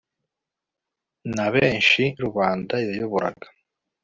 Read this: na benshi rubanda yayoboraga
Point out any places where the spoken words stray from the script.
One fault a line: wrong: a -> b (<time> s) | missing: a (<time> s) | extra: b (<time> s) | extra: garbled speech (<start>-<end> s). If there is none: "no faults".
no faults